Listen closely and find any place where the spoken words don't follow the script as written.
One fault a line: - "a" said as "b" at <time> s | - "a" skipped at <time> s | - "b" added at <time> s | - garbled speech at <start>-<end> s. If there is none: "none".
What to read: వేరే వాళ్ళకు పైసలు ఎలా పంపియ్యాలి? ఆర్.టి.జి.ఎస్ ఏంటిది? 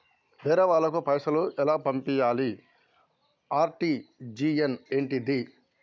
none